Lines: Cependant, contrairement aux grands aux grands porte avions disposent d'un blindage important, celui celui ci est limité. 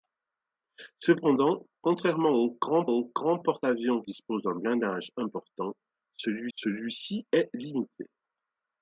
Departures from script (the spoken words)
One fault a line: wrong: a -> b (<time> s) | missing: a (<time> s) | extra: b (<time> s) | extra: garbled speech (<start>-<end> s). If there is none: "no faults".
no faults